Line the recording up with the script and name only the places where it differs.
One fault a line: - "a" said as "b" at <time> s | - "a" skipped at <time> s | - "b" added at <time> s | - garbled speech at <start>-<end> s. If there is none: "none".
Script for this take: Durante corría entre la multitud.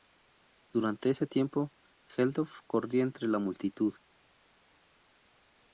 - "ese tiempo Geldof" added at 1.1 s